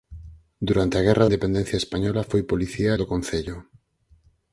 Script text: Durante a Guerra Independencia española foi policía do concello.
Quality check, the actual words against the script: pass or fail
pass